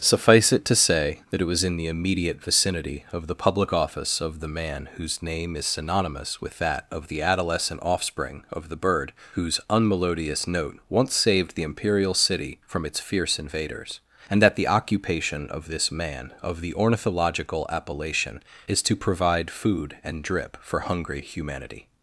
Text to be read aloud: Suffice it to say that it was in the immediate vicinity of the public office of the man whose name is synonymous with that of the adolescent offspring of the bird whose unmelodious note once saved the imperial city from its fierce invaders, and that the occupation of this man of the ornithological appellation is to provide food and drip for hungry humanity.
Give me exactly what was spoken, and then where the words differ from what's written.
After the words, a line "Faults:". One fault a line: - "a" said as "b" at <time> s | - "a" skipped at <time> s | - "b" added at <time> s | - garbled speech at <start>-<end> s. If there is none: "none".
Suffice it to say that it was in the immediate vicinity of the public office of the man whose name is synonymous with that of the adolescent offspring of the bird whose unmelodious note once saved the imperial city from its fierce invaders, and that the occupation of this man of the ornithological appellation is to provide food and drip for hungry humanity.
Faults:
none